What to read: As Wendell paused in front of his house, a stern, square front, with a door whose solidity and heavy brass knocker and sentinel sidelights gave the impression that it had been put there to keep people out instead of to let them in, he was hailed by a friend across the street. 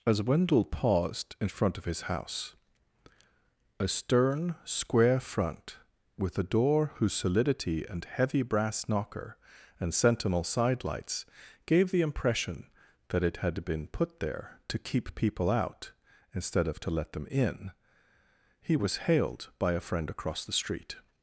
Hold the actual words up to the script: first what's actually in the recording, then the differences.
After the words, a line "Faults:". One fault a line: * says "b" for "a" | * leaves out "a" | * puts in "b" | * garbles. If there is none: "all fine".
As Wendell paused in front of his house, a stern, square front, with a door whose solidity and heavy brass knocker and sentinel sidelights gave the impression that it had been put there to keep people out instead of to let them in, he was hailed by a friend across the street.
Faults:
all fine